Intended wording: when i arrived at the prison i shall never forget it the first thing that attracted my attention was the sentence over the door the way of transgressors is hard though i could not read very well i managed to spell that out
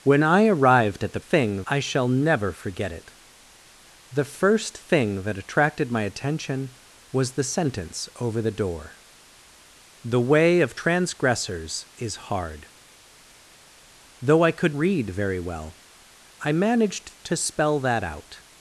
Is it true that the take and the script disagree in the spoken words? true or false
true